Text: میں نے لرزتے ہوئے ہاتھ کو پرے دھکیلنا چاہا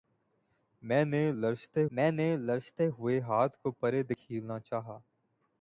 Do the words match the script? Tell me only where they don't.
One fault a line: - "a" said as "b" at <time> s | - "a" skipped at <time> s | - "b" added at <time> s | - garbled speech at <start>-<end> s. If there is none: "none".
- "میں نے لرزتے" added at 1.9 s